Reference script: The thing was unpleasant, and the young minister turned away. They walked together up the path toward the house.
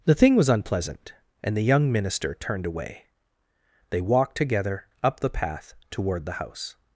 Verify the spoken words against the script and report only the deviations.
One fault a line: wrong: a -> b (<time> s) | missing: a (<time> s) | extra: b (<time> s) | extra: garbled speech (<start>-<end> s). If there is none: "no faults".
no faults